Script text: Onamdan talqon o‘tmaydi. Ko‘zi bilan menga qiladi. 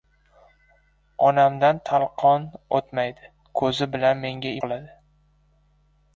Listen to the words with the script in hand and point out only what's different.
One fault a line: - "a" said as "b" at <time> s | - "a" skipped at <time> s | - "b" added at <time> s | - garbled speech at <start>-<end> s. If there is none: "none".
none